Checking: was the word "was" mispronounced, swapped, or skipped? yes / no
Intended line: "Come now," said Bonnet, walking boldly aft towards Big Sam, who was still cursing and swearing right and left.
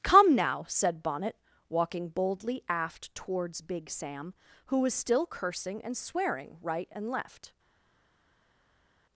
no